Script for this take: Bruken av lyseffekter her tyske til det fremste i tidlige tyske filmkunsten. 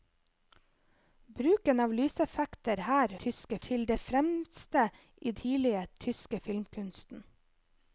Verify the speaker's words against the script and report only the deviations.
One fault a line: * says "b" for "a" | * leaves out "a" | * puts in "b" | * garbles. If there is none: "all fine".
all fine